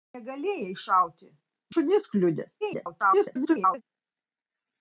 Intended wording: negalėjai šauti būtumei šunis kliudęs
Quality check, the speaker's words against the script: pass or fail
fail